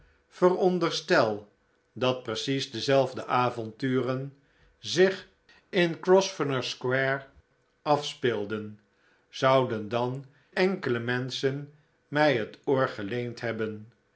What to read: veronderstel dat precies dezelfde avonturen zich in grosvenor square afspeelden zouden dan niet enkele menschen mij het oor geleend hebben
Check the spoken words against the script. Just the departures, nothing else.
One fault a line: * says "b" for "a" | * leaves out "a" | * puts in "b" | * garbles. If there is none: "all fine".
* leaves out "niet"